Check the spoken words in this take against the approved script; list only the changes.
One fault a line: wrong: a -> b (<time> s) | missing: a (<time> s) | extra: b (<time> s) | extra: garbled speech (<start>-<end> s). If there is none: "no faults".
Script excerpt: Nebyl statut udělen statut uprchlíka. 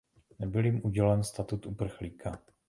wrong: statut -> jim (0.7 s)